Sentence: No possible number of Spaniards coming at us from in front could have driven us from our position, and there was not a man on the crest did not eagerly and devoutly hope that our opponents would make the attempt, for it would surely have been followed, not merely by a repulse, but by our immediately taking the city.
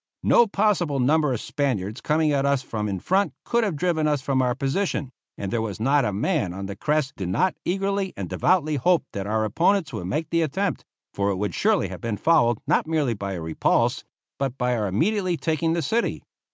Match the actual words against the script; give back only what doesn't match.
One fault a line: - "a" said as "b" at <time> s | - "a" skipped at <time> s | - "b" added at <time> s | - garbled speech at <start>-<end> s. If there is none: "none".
none